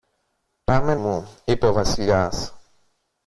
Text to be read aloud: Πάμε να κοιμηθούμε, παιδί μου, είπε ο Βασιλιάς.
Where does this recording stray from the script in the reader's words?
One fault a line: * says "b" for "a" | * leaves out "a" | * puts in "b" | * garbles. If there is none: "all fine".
* leaves out "να κοιμηθούμε παιδί"